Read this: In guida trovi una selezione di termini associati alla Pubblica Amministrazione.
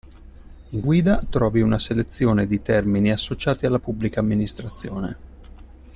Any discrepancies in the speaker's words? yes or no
no